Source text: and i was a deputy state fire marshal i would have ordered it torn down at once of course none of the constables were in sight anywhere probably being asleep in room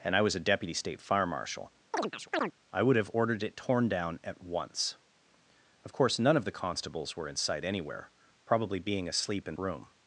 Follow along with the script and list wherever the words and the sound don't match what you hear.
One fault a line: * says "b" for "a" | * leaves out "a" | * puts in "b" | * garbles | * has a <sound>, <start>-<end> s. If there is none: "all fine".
* has a chirp, 1.9-2.5 s